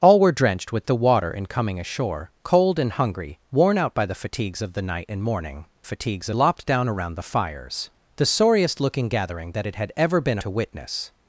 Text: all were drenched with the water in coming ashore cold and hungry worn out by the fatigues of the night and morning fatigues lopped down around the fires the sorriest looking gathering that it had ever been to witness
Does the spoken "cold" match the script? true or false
true